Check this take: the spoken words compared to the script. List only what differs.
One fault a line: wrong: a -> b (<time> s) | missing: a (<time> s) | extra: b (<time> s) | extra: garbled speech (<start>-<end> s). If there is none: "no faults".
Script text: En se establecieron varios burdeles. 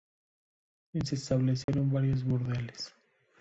no faults